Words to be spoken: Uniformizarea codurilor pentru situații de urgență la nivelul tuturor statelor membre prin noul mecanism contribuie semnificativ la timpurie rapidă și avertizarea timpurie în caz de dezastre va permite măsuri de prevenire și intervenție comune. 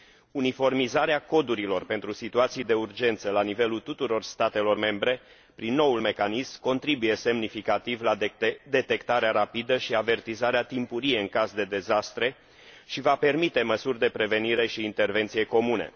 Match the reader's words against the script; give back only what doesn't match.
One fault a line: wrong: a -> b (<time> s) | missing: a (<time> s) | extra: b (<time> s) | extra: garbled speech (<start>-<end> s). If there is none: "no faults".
wrong: timpurie -> detectarea (8.7 s)
extra: și (12.9 s)